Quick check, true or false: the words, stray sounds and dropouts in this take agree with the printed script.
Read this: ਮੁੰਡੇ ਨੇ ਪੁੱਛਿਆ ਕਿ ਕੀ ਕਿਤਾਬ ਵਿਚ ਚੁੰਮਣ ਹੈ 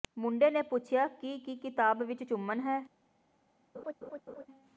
false